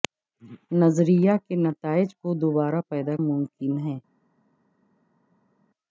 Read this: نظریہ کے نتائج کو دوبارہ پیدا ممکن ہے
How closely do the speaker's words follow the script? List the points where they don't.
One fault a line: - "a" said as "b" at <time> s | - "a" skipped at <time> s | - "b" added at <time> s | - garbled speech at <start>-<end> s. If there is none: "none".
none